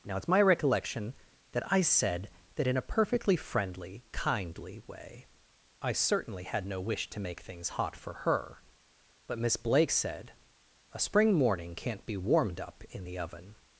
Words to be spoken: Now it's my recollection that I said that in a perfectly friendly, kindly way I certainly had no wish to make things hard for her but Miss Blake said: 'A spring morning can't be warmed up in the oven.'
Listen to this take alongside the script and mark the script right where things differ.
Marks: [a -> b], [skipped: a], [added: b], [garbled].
Now it's my recollection that I said that in a perfectly friendly, kindly way I certainly had no wish to make things [hard -> hot] for her but Miss Blake said: 'A spring morning can't be warmed up in the oven.'